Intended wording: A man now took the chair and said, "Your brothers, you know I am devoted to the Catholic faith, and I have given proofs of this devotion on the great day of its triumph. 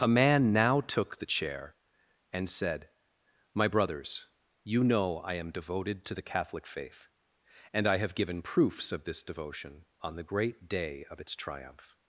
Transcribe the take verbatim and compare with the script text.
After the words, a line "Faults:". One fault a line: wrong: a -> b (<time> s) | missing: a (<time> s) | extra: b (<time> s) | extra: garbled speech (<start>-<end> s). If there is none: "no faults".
A man now took the chair and said, "My brothers, you know I am devoted to the Catholic faith, and I have given proofs of this devotion on the great day of its triumph.
Faults:
wrong: Your -> My (3.5 s)